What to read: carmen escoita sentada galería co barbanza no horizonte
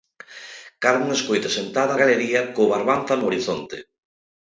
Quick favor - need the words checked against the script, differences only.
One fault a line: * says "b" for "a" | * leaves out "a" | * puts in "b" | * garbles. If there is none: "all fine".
all fine